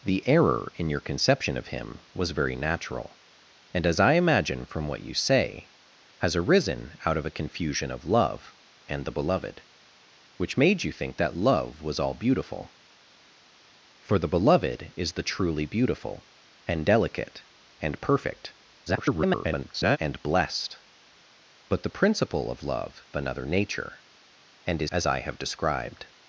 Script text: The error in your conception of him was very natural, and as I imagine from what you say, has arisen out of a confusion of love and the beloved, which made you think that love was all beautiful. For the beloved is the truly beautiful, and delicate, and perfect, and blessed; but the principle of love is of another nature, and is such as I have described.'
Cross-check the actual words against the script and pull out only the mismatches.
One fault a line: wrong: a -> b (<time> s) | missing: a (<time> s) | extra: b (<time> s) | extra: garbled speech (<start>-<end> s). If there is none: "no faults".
extra: garbled speech (18.9-20.0 s)
missing: is of (23.0 s)
missing: such (24.9 s)